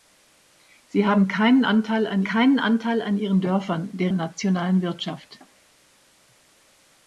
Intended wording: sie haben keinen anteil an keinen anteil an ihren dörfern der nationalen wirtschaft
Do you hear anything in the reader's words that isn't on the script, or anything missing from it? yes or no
no